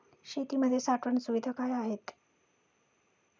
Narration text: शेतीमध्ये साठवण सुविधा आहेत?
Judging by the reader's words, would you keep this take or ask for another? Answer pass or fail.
fail